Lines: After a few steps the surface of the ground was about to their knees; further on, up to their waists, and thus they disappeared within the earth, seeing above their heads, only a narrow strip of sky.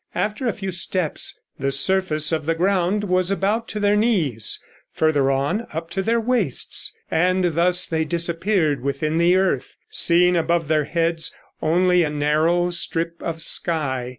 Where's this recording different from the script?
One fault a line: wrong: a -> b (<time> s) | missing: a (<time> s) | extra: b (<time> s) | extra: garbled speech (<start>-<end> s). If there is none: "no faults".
no faults